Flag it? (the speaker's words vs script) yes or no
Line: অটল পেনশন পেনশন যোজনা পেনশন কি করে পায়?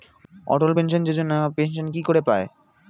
yes